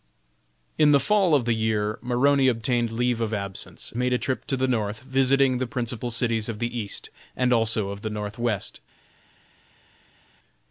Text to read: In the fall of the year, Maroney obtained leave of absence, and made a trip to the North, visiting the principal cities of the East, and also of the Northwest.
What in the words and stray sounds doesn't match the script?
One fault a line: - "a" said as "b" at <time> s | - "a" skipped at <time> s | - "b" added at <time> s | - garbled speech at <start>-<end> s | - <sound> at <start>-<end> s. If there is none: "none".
- "and" skipped at 3.9 s